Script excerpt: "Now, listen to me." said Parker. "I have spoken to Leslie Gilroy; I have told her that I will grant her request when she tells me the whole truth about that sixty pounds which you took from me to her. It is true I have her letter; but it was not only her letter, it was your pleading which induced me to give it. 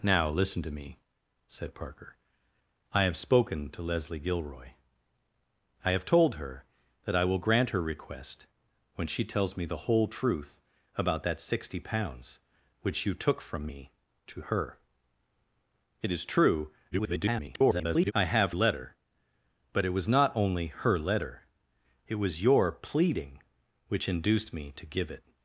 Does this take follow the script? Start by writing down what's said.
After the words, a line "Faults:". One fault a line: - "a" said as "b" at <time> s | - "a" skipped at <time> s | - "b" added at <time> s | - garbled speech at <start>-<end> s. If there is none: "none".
"Now, listen to me." said Parker. "I have spoken to Leslie Gilroy; I have told her that I will grant her request when she tells me the whole truth about that sixty pounds which you took from me to her. It is true [garbled] I have letter; but it was not only her letter, it was your pleading which induced me to give it.
Faults:
- garbled speech at 16.9-18.1 s
- "her" skipped at 18.5 s